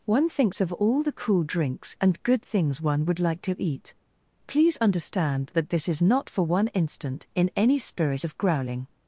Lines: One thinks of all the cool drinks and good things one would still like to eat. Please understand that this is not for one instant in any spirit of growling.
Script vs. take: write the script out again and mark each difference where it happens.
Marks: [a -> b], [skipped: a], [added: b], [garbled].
One thinks of all the cool drinks and good things one would [skipped: still] like to eat. Please understand that this is not for one instant in any spirit of growling.